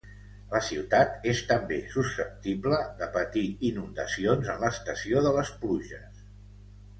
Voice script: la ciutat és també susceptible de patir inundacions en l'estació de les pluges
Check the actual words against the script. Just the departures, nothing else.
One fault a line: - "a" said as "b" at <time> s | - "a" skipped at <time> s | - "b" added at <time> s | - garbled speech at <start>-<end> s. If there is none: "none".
none